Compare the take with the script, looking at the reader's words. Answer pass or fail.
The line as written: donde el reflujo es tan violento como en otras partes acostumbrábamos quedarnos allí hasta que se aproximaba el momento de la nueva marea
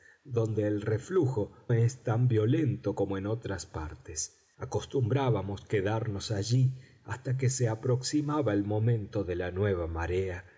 pass